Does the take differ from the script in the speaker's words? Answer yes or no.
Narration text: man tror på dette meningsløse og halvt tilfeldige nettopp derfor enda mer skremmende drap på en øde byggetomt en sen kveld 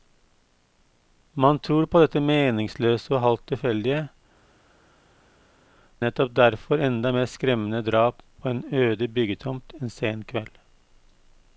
no